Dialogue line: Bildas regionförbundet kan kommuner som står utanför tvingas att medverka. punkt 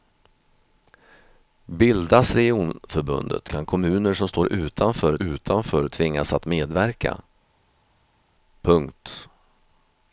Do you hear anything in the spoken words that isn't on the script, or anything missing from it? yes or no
yes